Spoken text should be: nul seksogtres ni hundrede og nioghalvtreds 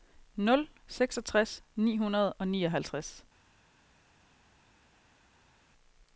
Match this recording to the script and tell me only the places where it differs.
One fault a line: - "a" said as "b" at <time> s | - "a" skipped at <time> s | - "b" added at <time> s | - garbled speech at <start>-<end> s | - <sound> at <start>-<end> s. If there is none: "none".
none